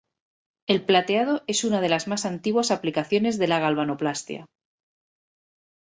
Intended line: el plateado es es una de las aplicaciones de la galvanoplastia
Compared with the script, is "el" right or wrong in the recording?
right